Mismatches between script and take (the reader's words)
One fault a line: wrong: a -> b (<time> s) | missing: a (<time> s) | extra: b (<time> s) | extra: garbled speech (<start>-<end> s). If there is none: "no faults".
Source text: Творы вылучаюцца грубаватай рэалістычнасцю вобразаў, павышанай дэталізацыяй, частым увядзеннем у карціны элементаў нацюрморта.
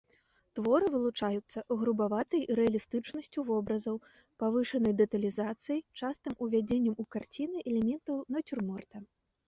no faults